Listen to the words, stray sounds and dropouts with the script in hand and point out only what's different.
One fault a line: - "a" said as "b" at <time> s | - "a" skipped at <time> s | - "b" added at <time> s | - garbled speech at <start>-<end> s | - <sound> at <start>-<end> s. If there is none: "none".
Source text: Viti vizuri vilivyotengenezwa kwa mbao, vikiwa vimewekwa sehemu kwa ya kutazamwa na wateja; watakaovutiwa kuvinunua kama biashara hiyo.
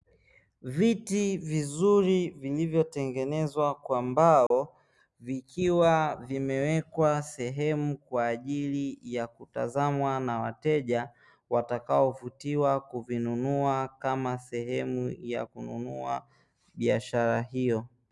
- dropout at 4.5-4.5 s
- "ajili" added at 8.3 s
- "sehemu ya kununua" added at 14.4 s